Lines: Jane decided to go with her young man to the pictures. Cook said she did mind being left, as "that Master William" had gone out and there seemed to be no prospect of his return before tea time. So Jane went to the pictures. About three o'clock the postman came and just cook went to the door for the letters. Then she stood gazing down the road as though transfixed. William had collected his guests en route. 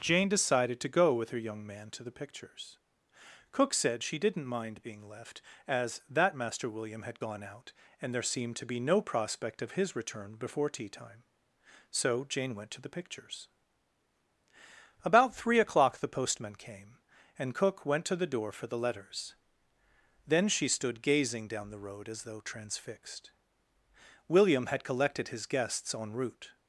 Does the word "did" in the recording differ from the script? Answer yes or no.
yes